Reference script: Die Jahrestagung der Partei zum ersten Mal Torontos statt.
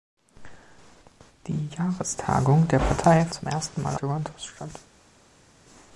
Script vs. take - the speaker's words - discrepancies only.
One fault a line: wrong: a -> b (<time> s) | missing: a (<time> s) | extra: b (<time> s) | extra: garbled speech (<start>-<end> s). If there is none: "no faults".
no faults